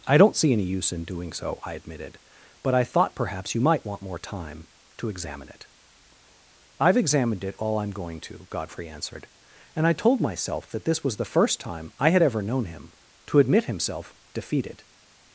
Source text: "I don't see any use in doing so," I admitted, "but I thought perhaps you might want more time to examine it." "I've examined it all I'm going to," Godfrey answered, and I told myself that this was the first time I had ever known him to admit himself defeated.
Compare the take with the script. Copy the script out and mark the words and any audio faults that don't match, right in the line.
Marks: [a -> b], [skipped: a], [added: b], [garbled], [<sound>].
"I don't see any use in doing so," I admitted, "but I thought perhaps you might want more time to examine it." "I've examined it all I'm going to," Godfrey answered, and I told myself that this was the first time I had ever known him to admit himself defeated.